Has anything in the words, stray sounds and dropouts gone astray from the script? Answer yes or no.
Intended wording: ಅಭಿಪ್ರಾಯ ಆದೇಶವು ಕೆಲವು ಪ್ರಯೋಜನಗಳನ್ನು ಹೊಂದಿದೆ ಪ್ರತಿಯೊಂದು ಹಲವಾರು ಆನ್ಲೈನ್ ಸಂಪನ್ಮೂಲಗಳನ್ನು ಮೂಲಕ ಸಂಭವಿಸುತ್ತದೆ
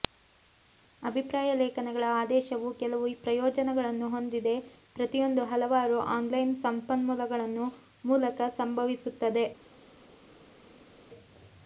yes